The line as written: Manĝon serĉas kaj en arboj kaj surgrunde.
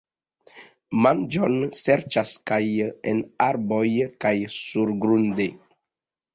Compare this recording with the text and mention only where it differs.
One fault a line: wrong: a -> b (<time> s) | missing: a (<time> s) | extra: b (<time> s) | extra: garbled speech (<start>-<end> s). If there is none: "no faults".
no faults